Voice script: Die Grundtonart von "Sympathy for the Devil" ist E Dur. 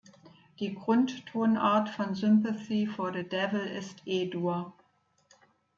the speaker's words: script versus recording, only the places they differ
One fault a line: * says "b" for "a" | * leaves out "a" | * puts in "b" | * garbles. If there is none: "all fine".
all fine